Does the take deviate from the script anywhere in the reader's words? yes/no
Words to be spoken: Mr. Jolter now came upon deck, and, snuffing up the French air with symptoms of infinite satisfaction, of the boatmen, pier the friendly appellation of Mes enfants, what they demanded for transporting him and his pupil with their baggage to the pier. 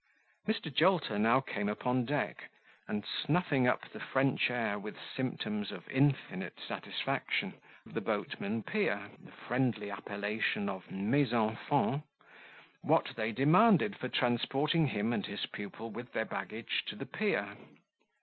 no